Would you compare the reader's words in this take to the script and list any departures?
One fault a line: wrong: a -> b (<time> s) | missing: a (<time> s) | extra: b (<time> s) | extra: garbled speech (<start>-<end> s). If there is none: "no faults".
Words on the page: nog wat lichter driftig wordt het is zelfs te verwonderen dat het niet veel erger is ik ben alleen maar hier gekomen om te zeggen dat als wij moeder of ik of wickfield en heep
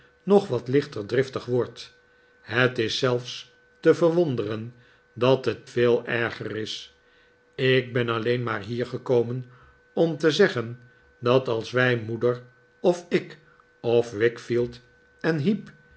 missing: niet (5.7 s)